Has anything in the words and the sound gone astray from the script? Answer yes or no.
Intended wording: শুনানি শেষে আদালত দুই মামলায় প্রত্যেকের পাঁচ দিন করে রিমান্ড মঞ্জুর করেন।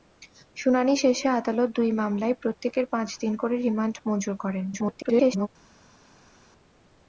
yes